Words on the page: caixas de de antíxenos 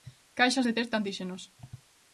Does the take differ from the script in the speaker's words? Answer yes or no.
yes